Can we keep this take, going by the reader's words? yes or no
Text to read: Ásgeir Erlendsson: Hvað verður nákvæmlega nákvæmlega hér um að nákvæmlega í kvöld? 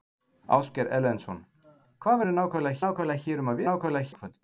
yes